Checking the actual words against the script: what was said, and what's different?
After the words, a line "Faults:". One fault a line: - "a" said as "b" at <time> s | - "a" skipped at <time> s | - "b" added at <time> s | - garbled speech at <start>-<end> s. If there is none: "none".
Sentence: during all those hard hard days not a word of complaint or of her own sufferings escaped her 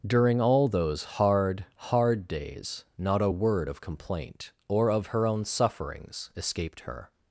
during all those hard hard days not a word of complaint or of her own sufferings escaped her
Faults:
none